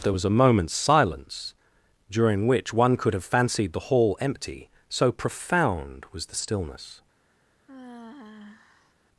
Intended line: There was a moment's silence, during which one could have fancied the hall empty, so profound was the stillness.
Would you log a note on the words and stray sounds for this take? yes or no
yes